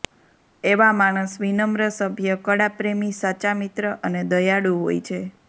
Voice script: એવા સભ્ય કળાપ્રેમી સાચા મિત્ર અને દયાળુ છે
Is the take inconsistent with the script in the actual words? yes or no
yes